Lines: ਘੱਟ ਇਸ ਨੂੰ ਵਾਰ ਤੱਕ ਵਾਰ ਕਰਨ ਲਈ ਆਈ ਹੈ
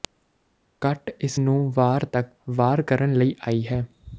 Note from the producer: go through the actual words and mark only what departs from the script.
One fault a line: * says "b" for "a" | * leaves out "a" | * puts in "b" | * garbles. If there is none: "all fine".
all fine